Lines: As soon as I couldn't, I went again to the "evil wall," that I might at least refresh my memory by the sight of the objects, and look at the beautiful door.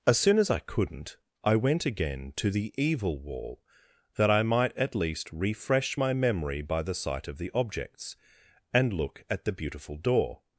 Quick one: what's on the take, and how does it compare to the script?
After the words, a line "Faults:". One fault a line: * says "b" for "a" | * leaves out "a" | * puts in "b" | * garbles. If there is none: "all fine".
As soon as I couldn't, I went again to the "evil wall," that I might at least refresh my memory by the sight of the objects, and look at the beautiful door.
Faults:
all fine